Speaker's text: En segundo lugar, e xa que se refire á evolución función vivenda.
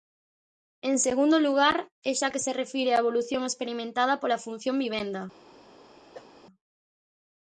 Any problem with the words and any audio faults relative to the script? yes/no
yes